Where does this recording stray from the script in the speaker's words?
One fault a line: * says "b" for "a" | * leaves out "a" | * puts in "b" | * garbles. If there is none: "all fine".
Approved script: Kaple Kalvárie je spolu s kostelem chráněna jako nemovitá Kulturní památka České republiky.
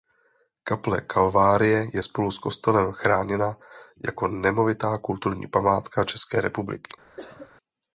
all fine